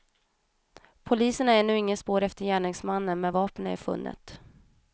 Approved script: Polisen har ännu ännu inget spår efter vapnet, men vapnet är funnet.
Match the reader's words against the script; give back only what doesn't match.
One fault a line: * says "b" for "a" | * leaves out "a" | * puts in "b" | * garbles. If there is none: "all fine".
* leaves out "ännu"
* says "gärningsmannen" for "vapnet"